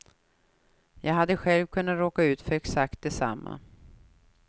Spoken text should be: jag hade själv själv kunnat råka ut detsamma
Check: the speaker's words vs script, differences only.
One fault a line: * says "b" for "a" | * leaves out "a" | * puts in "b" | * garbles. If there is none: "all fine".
* leaves out "själv"
* puts in "för exakt"